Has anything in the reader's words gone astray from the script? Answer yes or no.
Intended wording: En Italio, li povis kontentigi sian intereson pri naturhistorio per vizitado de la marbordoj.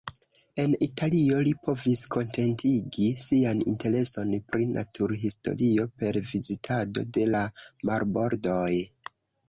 no